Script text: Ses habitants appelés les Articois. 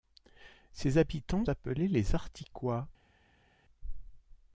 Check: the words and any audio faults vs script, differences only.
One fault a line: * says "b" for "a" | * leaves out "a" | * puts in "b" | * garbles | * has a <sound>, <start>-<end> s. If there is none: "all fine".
all fine